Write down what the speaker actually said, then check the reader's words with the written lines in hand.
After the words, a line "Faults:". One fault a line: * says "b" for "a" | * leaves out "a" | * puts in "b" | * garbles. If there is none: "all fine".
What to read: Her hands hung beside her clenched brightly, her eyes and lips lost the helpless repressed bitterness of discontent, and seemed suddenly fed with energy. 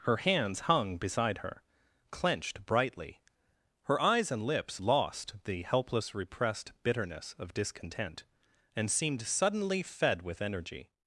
Her hands hung beside her clenched brightly, her eyes and lips lost the helpless repressed bitterness of discontent, and seemed suddenly fed with energy.
Faults:
all fine